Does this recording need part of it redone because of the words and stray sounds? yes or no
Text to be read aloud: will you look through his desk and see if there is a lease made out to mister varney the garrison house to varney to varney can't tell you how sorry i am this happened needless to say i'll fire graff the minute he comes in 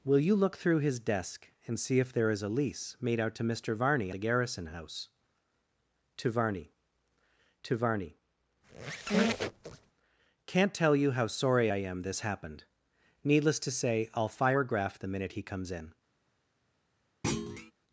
yes